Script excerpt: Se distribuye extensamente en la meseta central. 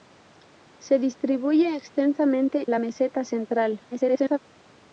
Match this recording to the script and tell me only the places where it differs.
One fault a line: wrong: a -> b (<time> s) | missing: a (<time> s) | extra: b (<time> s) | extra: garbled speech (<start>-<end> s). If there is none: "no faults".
missing: en (2.6 s)
extra: garbled speech (3.9-4.4 s)